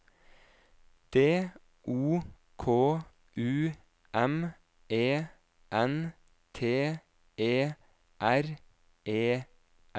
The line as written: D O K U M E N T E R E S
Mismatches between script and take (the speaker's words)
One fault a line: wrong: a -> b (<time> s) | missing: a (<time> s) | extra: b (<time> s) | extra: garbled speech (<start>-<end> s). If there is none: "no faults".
no faults